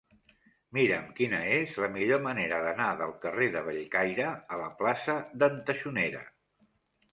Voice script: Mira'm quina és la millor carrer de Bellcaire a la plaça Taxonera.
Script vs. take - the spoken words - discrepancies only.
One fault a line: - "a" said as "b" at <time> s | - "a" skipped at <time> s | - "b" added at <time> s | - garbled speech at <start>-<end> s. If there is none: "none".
- "manera d'anar del" added at 2.3 s
- "d'en" added at 5.5 s